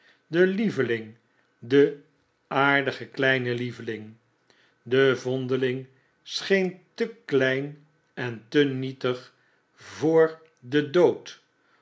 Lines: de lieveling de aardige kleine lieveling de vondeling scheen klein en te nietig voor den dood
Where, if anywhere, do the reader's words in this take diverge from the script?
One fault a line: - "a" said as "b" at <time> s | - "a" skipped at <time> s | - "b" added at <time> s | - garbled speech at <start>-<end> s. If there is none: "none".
- "te" added at 6.9 s